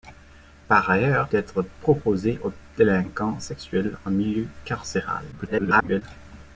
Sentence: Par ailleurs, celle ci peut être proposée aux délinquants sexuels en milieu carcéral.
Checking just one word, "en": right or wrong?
right